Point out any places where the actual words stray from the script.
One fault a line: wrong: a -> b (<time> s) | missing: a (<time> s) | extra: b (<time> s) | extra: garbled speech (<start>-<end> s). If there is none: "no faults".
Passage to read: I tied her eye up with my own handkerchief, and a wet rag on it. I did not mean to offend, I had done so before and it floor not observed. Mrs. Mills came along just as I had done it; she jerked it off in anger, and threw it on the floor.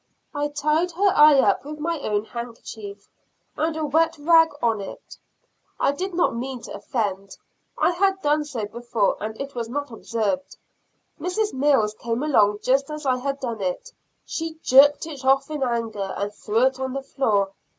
wrong: floor -> was (9.5 s)